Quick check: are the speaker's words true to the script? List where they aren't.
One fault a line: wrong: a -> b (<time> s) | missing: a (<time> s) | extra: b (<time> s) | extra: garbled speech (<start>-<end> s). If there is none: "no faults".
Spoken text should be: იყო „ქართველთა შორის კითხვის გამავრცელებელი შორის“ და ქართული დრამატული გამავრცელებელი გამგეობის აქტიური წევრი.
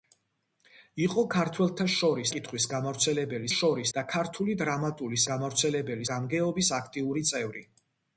no faults